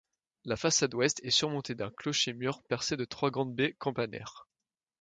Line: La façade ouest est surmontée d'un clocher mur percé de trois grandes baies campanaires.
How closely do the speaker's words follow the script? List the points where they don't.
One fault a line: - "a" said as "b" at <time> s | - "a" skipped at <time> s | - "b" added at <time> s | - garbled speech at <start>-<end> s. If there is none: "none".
none